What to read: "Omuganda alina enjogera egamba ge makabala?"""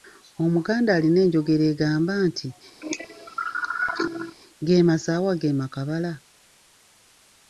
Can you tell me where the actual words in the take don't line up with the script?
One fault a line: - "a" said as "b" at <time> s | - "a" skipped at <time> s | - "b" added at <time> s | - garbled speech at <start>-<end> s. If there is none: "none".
- "nti Ge masaawa" added at 2.3 s